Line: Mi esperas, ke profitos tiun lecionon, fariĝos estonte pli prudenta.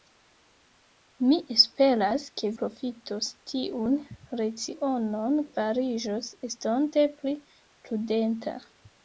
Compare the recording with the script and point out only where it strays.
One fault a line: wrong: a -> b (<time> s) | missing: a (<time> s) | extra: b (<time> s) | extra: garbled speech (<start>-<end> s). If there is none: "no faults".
no faults